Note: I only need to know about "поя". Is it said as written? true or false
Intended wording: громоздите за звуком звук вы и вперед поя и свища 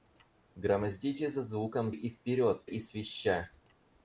false